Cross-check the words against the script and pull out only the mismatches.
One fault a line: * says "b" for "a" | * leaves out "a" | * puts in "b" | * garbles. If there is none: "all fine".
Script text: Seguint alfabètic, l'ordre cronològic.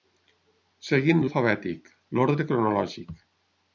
all fine